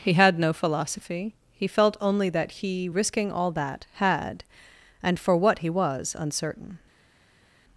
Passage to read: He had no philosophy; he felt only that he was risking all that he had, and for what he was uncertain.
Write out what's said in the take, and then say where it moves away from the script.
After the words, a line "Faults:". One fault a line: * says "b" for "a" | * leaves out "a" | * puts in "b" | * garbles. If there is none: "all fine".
He had no philosophy; he felt only that he risking all that had, and for what he was uncertain.
Faults:
* leaves out "was"
* leaves out "he"